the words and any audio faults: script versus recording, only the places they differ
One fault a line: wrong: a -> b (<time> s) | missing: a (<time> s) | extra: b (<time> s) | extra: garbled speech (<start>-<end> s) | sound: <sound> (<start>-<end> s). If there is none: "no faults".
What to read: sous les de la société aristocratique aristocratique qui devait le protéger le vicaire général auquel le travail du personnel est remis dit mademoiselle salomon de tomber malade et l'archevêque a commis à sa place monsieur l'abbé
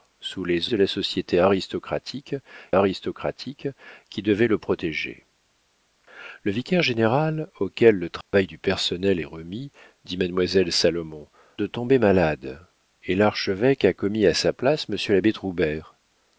sound: dropout (8.2-8.3 s)